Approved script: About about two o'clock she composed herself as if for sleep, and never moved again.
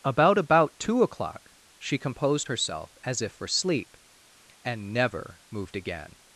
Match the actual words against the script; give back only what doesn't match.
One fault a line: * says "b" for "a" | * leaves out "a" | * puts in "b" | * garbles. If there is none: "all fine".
all fine